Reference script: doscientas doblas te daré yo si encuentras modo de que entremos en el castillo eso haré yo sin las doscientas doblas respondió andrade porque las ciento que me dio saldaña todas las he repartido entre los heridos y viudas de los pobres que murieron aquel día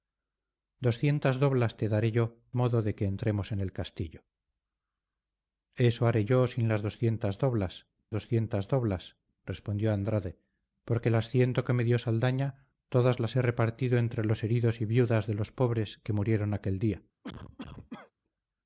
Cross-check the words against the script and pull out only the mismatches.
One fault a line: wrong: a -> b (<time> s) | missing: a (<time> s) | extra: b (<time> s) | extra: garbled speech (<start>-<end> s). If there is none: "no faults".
missing: si encuentras (2.4 s)
extra: doscientas doblas (8.1 s)